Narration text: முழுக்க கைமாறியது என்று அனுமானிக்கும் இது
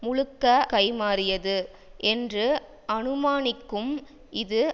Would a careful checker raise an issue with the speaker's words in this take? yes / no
no